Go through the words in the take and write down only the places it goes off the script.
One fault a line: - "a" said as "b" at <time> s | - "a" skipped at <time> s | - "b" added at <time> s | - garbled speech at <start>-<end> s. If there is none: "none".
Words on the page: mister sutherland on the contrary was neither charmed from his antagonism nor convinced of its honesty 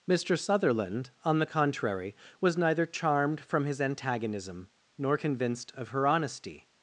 - "its" said as "her" at 5.9 s